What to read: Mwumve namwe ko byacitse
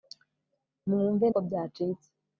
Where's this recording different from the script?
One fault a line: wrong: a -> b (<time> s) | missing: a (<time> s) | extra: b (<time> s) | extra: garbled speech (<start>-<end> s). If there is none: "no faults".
missing: namwe (1.2 s)